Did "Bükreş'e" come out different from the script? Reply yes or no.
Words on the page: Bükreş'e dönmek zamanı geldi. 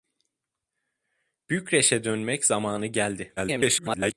no